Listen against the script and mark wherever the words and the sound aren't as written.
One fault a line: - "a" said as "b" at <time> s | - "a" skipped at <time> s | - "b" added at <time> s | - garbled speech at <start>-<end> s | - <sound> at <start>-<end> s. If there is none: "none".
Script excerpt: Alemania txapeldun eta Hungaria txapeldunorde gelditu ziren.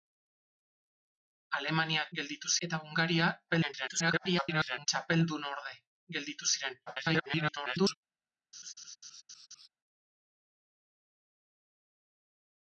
- "txapeldun" said as "gelditu" at 2.2 s
- garbled speech at 3.5-4.9 s
- garbled speech at 6.9-8.0 s
- laugh at 8.5-9.7 s